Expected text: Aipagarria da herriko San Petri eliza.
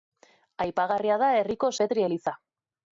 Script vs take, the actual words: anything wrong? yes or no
yes